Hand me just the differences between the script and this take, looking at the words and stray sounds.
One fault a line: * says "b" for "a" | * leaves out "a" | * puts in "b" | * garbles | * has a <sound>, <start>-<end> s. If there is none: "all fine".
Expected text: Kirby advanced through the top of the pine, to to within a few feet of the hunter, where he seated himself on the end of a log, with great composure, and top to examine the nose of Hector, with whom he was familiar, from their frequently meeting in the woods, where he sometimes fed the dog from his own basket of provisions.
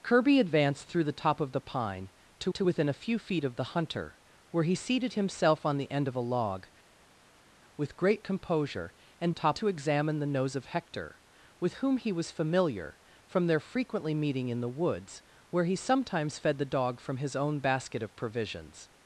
all fine